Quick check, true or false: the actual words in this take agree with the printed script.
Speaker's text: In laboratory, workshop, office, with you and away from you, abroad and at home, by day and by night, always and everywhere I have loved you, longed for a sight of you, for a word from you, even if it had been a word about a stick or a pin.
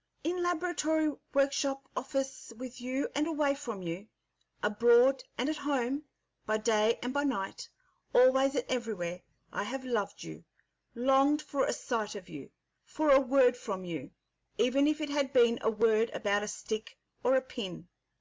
true